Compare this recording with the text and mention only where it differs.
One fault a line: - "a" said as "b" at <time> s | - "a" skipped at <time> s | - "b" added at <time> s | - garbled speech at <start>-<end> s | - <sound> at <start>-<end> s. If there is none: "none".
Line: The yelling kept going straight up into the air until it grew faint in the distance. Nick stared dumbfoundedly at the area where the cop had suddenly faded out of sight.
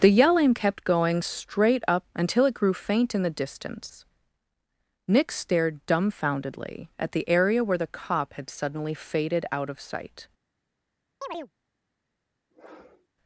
- "into the air" skipped at 2.1 s
- chirp at 11.2-11.5 s
- sniff at 12.5-13.1 s